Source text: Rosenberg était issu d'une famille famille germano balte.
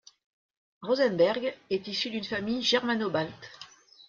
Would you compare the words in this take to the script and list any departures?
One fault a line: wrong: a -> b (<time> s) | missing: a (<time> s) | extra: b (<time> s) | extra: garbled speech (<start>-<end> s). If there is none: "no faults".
wrong: était -> est (1.7 s)
missing: famille (2.6 s)